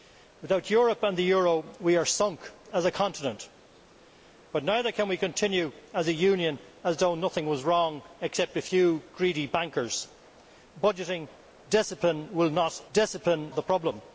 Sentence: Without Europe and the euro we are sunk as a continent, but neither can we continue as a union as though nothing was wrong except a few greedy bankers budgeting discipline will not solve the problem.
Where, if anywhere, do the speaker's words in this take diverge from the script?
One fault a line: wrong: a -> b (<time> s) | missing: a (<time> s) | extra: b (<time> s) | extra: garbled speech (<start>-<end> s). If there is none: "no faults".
wrong: solve -> discipline (12.9 s)